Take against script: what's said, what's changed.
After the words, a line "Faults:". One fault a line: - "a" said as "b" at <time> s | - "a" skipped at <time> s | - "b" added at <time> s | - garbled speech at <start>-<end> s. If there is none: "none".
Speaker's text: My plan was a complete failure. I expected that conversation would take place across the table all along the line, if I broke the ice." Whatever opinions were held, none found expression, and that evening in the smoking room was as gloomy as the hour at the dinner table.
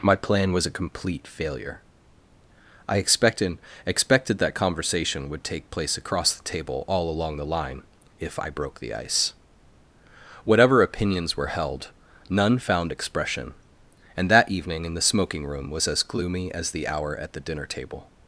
My plan was a complete failure. I expected expected that conversation would take place across the table all along the line, if I broke the ice." Whatever opinions were held, none found expression, and that evening in the smoking room was as gloomy as the hour at the dinner table.
Faults:
- "expected" added at 3.9 s